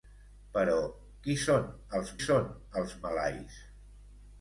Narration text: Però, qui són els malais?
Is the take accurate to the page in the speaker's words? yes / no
no